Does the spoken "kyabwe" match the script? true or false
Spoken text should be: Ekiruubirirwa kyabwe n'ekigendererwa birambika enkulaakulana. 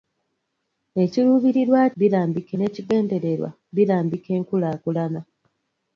false